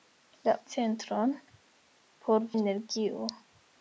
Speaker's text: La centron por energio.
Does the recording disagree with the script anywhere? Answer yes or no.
no